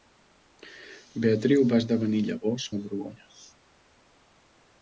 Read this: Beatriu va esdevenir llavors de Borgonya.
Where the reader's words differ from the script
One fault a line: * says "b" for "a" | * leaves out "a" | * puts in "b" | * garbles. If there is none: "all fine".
all fine